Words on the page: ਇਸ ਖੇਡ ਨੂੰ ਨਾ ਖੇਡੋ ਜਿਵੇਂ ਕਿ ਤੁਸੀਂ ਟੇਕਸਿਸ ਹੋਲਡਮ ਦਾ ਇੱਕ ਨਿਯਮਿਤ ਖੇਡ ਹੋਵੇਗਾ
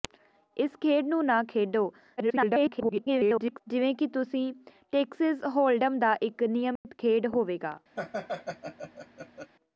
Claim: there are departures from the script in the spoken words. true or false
true